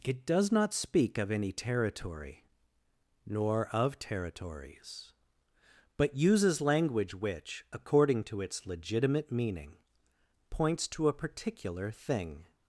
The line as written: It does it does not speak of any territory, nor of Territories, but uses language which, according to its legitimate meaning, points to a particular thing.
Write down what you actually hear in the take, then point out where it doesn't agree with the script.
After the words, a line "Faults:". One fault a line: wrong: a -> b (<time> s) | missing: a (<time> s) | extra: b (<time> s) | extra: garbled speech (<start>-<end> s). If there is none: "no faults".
It does not speak of any territory, nor of Territories, but uses language which, according to its legitimate meaning, points to a particular thing.
Faults:
missing: it does (0.5 s)